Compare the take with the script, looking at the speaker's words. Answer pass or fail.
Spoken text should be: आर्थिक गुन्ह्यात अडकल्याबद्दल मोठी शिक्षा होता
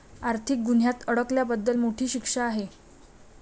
fail